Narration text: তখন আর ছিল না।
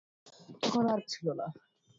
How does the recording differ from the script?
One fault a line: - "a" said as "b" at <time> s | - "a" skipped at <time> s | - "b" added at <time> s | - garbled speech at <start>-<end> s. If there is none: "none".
none